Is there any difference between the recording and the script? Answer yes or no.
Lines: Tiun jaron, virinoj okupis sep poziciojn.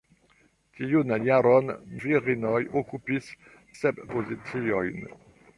no